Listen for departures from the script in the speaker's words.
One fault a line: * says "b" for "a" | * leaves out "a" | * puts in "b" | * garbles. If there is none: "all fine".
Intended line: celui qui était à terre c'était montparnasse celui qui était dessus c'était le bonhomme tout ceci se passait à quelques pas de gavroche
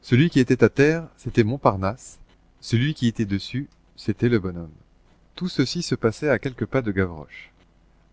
all fine